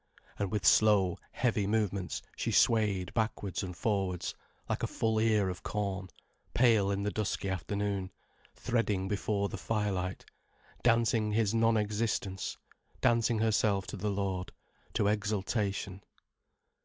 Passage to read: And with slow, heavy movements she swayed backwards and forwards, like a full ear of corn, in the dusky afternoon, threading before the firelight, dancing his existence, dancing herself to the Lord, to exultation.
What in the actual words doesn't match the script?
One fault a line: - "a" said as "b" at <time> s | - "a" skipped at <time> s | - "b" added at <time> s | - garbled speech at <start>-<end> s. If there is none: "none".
- "pale" added at 6.5 s
- "non" added at 11.5 s